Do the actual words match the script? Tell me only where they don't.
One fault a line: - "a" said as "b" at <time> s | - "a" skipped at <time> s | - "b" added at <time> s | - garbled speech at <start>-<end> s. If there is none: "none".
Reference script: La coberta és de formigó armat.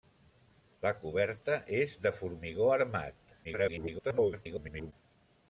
- garbled speech at 3.4-4.9 s